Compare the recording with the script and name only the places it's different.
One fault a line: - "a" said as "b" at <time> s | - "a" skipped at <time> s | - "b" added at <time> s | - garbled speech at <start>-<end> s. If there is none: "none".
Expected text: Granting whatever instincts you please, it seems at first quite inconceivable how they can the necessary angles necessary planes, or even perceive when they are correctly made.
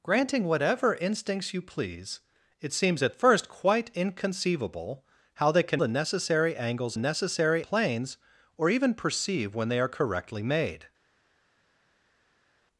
none